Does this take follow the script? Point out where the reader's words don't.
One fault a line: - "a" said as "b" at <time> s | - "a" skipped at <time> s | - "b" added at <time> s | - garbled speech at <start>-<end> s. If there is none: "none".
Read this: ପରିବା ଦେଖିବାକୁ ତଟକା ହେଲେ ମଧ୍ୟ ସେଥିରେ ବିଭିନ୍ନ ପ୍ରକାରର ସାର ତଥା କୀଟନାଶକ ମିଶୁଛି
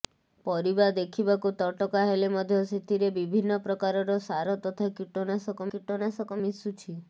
- "କୀଟନାଶକ" added at 5.7 s